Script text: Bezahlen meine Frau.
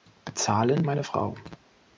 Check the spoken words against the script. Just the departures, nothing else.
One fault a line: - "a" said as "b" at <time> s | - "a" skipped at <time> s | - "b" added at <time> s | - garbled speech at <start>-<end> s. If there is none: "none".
none